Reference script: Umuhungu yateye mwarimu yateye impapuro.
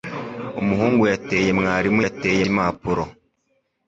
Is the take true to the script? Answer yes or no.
yes